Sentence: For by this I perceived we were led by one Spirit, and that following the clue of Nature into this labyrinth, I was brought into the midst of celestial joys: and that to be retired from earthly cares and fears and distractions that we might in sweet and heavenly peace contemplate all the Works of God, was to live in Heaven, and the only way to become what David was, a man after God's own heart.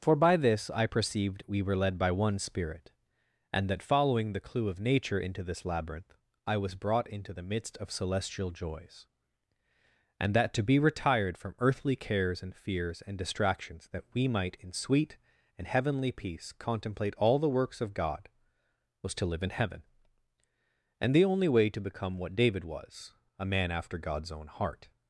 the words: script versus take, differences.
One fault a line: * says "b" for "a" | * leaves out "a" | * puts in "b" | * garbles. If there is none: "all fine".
all fine